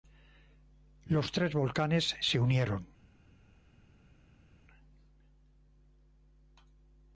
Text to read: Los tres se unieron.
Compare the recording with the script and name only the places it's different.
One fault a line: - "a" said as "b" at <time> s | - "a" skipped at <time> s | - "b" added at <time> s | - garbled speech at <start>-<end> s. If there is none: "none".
- "volcanes" added at 1.5 s